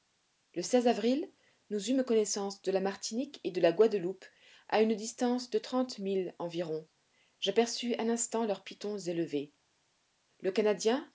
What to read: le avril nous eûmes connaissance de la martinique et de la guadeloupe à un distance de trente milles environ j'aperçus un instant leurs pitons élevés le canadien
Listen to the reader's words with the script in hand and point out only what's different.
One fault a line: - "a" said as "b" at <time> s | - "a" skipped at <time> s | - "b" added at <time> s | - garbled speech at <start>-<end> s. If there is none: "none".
- "un" said as "une" at 4.8 s